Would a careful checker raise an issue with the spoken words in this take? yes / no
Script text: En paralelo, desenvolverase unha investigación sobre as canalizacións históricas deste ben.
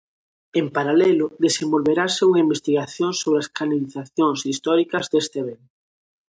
no